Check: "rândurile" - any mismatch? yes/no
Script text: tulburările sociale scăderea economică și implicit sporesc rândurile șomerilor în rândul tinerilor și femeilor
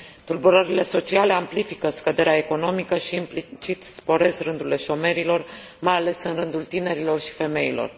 no